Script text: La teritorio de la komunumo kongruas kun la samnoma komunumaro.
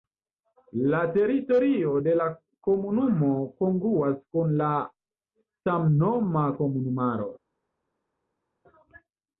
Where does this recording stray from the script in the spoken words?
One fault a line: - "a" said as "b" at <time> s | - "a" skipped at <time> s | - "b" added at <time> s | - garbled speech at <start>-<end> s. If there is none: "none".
none